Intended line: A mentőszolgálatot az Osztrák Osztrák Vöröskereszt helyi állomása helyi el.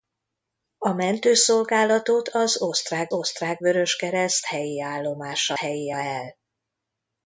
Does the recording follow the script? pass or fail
pass